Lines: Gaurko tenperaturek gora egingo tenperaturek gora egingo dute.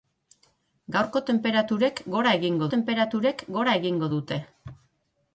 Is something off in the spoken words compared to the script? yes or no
no